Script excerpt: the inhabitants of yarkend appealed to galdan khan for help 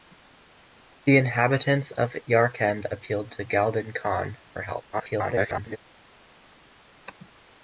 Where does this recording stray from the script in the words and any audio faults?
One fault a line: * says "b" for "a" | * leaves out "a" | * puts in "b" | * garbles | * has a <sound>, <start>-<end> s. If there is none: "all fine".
* garbles